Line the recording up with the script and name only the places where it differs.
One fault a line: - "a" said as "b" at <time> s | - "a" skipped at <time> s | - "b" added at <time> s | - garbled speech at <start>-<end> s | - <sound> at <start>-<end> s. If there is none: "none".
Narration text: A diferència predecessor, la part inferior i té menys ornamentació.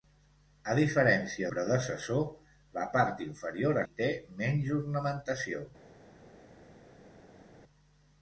none